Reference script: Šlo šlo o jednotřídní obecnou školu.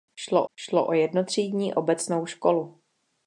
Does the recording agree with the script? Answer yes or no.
yes